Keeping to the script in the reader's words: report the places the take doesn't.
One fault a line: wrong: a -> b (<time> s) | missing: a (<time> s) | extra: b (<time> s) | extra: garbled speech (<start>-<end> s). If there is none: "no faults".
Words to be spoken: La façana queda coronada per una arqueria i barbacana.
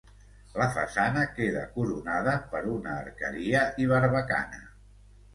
no faults